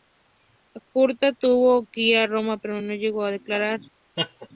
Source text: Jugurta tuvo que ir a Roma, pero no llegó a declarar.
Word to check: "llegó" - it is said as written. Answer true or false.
true